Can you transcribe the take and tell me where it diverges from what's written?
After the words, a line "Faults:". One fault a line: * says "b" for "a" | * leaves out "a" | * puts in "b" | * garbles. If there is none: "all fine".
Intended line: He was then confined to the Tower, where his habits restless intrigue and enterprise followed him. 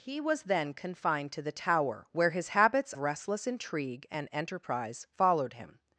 He was then confined to the Tower, where his habits restless intrigue and enterprise followed him.
Faults:
all fine